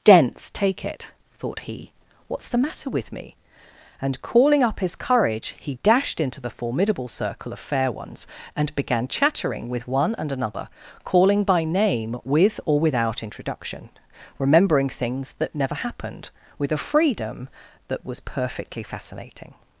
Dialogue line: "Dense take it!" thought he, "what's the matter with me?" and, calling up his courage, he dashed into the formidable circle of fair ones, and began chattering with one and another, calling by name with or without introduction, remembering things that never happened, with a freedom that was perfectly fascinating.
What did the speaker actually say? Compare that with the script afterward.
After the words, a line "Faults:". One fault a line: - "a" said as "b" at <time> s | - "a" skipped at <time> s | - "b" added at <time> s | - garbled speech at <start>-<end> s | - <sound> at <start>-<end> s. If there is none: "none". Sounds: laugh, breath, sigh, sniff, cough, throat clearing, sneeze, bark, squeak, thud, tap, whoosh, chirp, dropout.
"Dense take it!" thought he, "what's the matter with me?" and, calling up his courage, he dashed into the formidable circle of fair ones, and began chattering with one and another, calling by name with or without introduction, remembering things that never happened, with a freedom that was perfectly fascinating.
Faults:
none